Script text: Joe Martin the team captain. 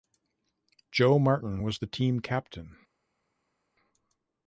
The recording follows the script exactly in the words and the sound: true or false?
false